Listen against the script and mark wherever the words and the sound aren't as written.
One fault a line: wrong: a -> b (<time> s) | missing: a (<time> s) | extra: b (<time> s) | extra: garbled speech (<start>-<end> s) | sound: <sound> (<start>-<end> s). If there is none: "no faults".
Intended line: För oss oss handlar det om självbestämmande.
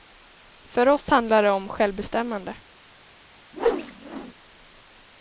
missing: oss (1.1 s)
sound: whoosh (3.5-4.3 s)